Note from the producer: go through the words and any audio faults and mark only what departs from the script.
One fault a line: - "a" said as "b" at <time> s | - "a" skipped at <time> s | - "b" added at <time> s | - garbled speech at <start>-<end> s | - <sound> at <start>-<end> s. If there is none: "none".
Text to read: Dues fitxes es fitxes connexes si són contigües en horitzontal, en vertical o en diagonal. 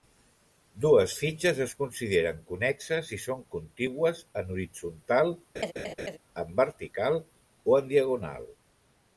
- "fitxes" said as "consideren" at 1.8 s
- laugh at 5.6-6.2 s